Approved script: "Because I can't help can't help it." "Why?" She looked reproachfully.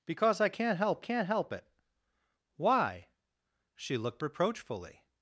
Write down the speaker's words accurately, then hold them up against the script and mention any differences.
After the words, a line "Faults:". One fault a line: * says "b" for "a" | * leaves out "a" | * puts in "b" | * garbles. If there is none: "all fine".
"Because I can't help can't help it." "Why?" She looked reproachfully.
Faults:
all fine